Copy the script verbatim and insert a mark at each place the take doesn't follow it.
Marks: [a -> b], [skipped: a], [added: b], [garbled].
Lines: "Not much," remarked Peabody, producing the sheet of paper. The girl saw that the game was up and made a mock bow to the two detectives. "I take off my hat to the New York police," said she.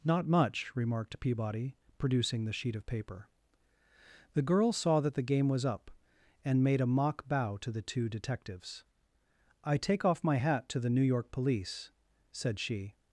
"Not much," remarked Peabody, producing the sheet of paper. The girl saw that the game was up and made a mock bow to the two detectives. "I take off my hat to the New York police," said she.